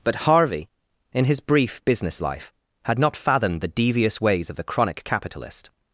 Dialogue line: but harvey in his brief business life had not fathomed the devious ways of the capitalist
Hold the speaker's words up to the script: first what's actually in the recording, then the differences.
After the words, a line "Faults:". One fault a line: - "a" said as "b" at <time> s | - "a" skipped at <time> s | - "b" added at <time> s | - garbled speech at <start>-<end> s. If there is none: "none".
but harvey in his brief business life had not fathomed the devious ways of the chronic capitalist
Faults:
- "chronic" added at 4.6 s